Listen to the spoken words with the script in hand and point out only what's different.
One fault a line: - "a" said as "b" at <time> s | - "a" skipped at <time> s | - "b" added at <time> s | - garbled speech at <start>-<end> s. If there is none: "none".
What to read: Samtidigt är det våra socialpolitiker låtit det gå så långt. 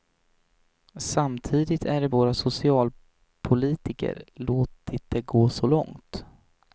none